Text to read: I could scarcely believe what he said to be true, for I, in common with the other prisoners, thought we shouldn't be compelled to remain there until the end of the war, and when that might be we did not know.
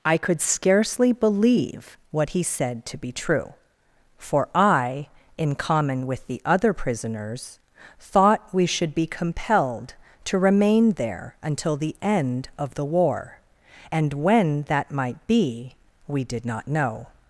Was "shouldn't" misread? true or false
true